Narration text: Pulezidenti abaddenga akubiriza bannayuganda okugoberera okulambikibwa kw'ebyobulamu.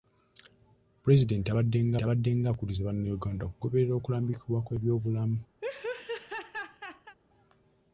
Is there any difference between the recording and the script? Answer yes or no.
yes